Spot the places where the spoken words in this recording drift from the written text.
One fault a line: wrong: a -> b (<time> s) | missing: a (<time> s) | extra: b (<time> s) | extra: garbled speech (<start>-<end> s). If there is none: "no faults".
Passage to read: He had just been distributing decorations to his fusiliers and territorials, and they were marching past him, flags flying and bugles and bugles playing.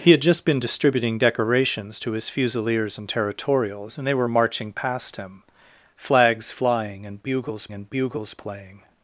no faults